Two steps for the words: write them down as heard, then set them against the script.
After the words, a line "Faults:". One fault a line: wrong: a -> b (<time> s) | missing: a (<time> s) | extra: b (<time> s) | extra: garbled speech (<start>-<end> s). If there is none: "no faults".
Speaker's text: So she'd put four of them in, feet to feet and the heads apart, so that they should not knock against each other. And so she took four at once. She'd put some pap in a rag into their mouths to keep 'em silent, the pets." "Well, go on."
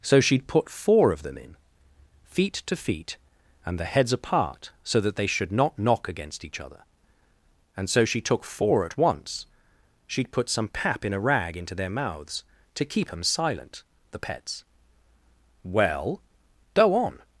So she'd put four of them in, feet to feet and the heads apart, so that they should not knock against each other. And so she took four at once. She'd put some pap in a rag into their mouths to keep 'em silent, the pets." "Well, go on."
Faults:
no faults